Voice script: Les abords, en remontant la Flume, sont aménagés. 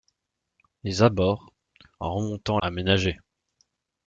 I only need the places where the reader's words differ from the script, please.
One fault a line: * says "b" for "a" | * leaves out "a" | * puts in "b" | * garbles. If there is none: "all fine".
* leaves out "la Flume sont"